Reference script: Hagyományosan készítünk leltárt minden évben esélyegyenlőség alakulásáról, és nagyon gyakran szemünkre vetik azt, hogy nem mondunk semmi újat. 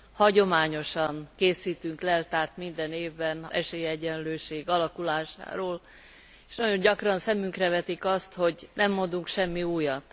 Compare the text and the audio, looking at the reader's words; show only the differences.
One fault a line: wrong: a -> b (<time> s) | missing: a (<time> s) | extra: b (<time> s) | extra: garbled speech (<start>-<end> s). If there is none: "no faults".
no faults